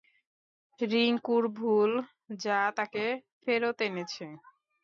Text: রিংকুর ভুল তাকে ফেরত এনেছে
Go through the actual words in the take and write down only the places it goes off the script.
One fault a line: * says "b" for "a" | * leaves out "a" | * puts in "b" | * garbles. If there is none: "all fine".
* puts in "যা"